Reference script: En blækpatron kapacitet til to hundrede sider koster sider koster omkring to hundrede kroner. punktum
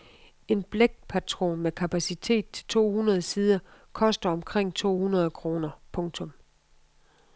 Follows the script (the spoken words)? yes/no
no